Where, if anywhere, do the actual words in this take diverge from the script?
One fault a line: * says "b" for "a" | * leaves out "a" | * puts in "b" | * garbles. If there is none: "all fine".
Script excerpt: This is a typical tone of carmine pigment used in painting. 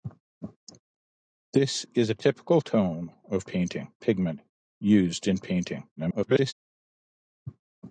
* says "painting" for "carmine"
* garbles